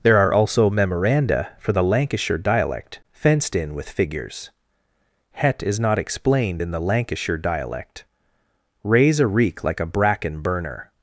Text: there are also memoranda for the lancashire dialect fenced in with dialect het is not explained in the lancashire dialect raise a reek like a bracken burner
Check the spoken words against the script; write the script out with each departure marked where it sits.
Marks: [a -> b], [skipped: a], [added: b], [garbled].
there are also memoranda for the lancashire dialect fenced in with [dialect -> figures] het is not explained in the lancashire dialect raise a reek like a bracken burner